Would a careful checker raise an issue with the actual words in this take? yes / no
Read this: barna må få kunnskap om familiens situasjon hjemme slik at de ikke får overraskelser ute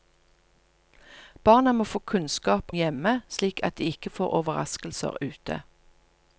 yes